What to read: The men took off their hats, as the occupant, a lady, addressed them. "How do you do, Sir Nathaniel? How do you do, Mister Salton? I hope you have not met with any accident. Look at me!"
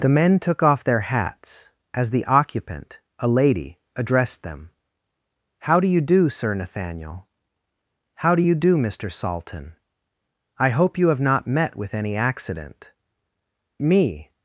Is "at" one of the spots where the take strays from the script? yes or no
yes